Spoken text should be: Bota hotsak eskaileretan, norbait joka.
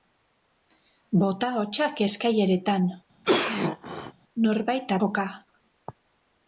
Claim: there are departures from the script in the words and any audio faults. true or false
true